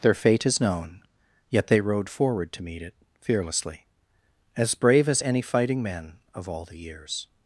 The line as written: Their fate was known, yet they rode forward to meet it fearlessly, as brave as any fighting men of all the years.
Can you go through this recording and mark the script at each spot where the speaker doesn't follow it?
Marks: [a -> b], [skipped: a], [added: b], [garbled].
Their fate [was -> is] known, yet they rode forward to meet it fearlessly, as brave as any fighting men of all the years.